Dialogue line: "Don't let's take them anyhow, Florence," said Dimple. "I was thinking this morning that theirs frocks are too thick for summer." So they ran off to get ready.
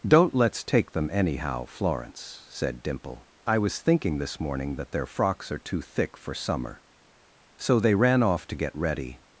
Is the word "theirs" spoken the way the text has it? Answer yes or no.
no